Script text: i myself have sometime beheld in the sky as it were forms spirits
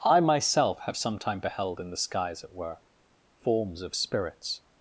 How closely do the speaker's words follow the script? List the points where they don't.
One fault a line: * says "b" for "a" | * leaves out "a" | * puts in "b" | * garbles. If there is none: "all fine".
* puts in "of"